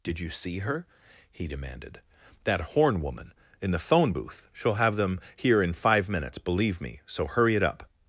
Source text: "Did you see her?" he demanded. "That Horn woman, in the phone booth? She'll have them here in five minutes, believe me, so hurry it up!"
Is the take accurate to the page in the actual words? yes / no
yes